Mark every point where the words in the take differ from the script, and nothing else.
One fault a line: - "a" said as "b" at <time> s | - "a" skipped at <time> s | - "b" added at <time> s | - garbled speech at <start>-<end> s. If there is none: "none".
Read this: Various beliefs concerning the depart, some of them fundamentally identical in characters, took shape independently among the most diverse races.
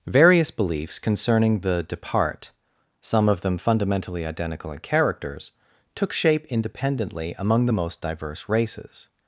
none